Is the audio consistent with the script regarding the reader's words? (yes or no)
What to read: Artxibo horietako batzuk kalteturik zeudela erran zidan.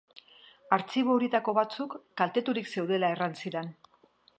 yes